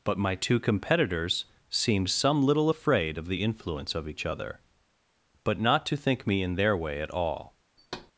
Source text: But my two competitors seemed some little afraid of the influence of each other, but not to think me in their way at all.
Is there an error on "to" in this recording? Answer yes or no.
no